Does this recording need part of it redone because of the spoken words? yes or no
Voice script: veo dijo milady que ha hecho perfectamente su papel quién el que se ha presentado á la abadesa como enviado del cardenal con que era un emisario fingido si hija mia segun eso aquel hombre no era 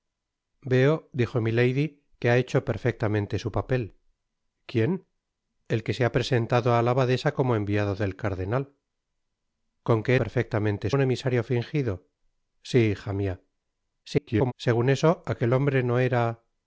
yes